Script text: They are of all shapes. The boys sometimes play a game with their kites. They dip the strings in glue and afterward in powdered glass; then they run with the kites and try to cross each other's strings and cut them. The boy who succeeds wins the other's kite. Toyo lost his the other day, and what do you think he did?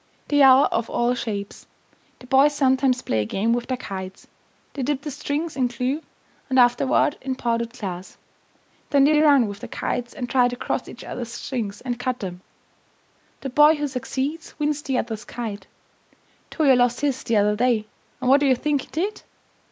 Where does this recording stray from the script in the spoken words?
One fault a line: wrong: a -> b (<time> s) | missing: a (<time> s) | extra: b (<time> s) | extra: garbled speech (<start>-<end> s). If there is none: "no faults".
extra: they (9.1 s)